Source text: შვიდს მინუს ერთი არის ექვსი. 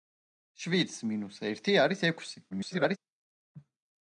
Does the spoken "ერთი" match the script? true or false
true